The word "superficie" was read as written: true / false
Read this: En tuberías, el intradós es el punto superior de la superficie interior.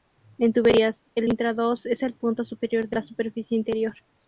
true